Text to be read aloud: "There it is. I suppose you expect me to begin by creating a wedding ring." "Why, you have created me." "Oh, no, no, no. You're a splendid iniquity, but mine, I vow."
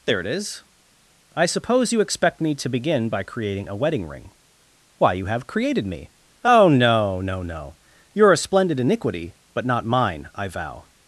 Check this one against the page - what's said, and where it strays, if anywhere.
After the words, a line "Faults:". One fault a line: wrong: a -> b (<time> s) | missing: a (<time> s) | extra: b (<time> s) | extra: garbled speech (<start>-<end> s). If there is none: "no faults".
"There it is. I suppose you expect me to begin by creating a wedding ring." "Why, you have created me." "Oh, no, no, no. You're a splendid iniquity, but not mine, I vow."
Faults:
extra: not (9.6 s)